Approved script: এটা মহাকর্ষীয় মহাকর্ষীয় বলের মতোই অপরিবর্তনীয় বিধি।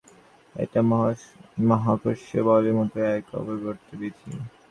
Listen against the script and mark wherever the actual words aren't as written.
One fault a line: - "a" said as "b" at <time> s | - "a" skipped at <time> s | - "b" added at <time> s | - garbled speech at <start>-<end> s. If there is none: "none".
- "মহাকর্ষীয়" skipped at 2.4 s
- "এক" added at 3.1 s